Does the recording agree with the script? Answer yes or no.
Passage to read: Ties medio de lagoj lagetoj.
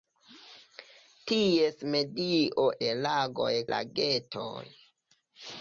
yes